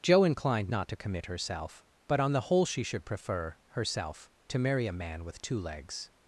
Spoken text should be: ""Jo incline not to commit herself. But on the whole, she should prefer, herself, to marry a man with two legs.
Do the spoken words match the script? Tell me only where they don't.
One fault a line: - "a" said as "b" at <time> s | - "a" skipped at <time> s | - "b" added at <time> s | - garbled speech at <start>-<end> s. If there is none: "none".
- "incline" said as "inclined" at 0.2 s